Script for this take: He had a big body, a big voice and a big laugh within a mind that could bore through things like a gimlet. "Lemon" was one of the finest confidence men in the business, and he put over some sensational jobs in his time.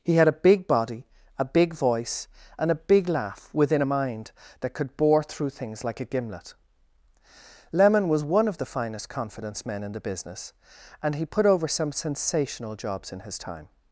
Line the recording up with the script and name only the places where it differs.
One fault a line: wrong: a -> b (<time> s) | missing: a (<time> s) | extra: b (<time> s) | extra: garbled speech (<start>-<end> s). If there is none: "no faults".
no faults